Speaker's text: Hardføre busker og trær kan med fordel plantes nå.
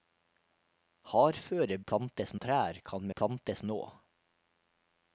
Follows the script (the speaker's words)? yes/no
no